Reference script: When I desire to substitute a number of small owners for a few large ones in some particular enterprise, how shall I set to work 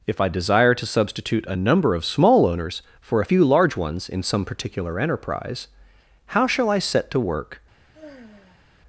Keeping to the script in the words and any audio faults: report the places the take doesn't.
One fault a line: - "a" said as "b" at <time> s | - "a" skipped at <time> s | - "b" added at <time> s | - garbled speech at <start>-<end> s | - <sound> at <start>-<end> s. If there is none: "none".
- "When" said as "If" at 0.1 s
- sigh at 7.9-8.7 s